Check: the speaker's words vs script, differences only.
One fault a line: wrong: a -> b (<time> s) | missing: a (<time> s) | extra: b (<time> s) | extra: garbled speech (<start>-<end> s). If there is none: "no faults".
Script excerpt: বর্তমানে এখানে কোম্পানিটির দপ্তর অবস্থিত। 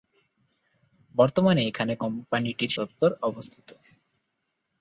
no faults